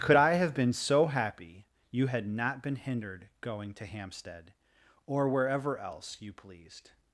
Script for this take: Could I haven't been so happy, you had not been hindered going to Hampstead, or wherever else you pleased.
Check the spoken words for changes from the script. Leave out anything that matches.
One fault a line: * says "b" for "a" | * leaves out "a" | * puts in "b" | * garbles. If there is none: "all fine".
* says "have" for "haven't"